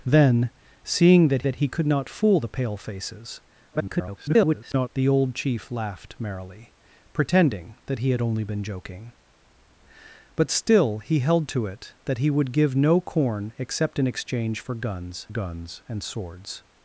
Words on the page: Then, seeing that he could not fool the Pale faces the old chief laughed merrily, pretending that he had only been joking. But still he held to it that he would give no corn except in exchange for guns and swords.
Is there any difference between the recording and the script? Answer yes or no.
yes